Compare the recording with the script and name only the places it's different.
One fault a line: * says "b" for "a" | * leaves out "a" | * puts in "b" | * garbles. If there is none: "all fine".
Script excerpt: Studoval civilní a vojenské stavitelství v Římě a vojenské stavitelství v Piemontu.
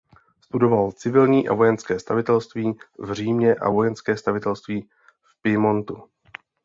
all fine